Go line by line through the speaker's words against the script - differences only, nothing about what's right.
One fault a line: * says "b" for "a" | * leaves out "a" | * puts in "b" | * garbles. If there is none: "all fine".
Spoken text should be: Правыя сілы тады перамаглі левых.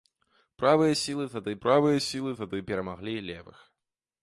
* puts in "правыя сілы тады"